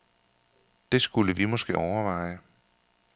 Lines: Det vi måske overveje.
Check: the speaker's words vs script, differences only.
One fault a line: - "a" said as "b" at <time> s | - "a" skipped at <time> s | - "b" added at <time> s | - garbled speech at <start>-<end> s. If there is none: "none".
- "skulle" added at 1.0 s